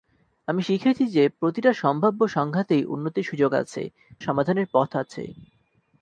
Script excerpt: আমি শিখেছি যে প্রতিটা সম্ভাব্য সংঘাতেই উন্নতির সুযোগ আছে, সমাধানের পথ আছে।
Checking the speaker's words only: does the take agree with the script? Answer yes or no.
yes